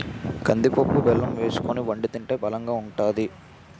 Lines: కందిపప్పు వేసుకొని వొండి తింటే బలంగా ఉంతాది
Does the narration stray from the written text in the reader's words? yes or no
yes